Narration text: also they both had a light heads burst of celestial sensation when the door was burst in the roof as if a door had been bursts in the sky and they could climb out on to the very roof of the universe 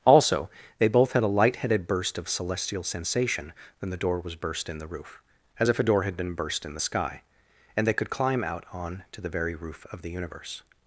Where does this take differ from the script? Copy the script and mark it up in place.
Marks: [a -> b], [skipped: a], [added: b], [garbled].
also they both had a light [heads -> headed] burst of celestial sensation when the door was burst in the roof as if a door had been [bursts -> burst] in the sky and they could climb out on to the very roof of the universe